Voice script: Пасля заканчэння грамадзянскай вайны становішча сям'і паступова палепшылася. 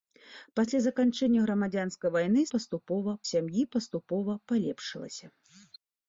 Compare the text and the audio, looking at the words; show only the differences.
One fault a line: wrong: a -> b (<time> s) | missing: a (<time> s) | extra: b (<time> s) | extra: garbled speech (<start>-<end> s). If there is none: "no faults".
wrong: становішча -> паступова (2.6 s)